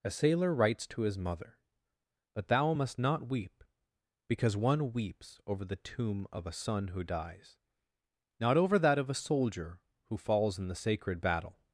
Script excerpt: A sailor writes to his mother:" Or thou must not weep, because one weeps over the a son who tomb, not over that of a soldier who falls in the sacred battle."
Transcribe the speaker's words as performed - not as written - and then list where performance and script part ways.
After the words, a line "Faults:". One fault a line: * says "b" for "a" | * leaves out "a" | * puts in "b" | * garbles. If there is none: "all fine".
A sailor writes to his mother:" But thou must not weep, because one weeps over the tomb of a son who dies, not over that of a soldier who falls in the sacred battle."
Faults:
* says "But" for "Or"
* puts in "tomb of"
* says "dies" for "tomb"